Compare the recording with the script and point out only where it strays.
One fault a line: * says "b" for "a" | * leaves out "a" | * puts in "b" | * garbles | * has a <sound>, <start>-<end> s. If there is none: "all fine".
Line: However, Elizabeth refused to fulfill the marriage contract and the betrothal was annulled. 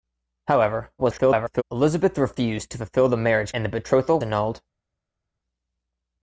* garbles
* leaves out "contract"
* leaves out "was"